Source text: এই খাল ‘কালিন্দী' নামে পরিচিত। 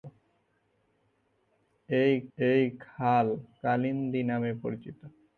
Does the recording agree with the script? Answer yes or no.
no